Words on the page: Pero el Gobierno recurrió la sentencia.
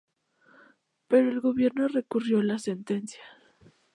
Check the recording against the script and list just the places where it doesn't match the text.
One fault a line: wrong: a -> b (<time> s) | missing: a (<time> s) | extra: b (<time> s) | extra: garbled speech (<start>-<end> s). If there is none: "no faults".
no faults